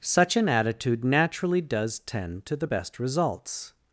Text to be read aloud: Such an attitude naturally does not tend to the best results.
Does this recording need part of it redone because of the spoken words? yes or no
yes